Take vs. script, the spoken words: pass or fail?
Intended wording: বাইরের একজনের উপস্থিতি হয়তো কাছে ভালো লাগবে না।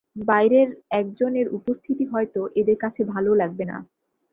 fail